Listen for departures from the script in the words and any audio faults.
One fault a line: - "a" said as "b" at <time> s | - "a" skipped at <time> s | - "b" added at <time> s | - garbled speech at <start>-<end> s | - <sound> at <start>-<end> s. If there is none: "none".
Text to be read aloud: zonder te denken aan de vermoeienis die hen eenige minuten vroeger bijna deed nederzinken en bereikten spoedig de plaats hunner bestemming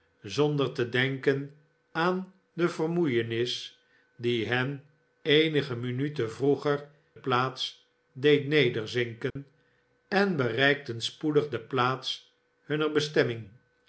- "bijna" said as "plaats" at 7.1 s
- dropout at 9.3-9.4 s